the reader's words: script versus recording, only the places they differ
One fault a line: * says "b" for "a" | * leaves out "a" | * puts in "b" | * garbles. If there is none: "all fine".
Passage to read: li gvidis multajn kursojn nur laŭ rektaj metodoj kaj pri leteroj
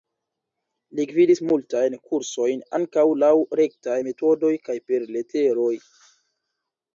* says "ankaŭ" for "nur"
* says "per" for "pri"